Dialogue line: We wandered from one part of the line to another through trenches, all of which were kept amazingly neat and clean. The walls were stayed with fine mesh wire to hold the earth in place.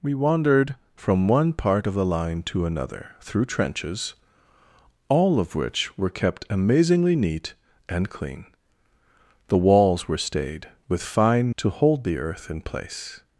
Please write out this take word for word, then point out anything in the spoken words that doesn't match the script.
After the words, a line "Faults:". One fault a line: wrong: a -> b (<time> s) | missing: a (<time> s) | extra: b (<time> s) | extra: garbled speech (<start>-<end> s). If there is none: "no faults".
We wandered from one part of the line to another through trenches, all of which were kept amazingly neat and clean. The walls were stayed with fine to hold the earth in place.
Faults:
missing: mesh wire (11.6 s)